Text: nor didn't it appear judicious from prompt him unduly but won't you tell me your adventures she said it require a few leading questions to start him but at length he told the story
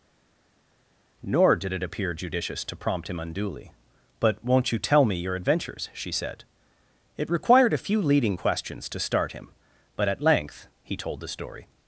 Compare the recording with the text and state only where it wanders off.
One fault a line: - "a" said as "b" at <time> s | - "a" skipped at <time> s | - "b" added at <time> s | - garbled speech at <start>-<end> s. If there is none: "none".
- "didn't" said as "did" at 1.6 s
- "from" said as "to" at 2.6 s
- "require" said as "required" at 7.3 s